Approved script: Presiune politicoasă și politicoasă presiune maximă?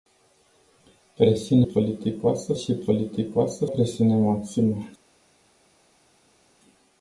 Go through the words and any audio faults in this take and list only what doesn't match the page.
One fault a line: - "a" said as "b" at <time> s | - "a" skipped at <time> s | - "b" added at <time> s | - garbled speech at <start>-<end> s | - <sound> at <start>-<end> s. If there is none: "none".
none